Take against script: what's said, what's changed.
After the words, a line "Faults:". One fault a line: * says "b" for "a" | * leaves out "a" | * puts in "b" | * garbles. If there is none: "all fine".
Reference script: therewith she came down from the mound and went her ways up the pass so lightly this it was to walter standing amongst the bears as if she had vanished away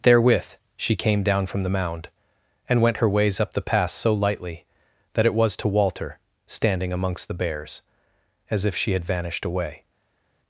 therewith she came down from the mound and went her ways up the pass so lightly that it was to walter standing amongst the bears as if she had vanished away
Faults:
* says "that" for "this"